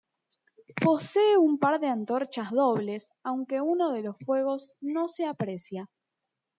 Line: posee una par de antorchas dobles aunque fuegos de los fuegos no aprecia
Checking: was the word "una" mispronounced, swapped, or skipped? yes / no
yes